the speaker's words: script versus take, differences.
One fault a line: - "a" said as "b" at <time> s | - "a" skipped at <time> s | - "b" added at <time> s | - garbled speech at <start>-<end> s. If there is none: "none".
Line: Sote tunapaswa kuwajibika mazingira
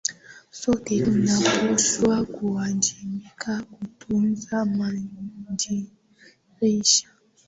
- "kutunza" added at 3.6 s